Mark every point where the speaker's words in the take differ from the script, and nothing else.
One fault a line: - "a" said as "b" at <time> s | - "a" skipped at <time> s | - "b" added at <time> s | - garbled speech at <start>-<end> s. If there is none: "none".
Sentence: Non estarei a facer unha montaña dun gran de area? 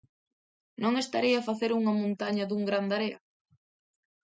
none